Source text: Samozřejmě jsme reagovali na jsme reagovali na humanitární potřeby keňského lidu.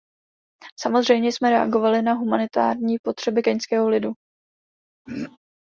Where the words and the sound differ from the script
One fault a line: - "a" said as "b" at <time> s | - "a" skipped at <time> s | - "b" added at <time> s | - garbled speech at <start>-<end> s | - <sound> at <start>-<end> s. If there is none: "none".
- "jsme reagovali na" skipped at 2.1 s
- throat clearing at 5.1-5.4 s